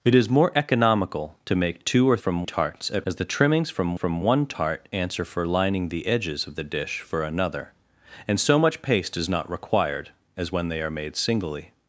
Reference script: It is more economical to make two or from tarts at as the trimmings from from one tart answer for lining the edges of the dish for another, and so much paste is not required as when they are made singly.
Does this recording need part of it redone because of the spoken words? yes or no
no